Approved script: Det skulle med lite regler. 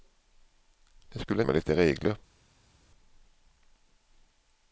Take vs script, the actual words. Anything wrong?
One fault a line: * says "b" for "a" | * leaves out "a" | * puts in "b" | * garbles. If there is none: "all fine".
all fine